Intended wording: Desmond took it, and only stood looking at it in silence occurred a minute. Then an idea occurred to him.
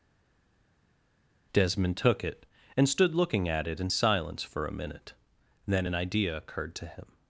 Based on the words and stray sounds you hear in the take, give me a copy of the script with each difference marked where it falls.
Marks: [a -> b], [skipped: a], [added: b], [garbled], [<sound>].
Desmond took it, and [skipped: only] stood looking at it in silence [occurred -> for] a minute. Then an idea occurred to him.